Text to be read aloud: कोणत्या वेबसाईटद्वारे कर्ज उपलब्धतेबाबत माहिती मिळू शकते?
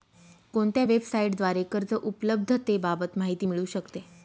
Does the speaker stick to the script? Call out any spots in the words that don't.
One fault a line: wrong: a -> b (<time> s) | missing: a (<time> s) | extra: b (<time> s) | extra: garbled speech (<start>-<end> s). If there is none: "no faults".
no faults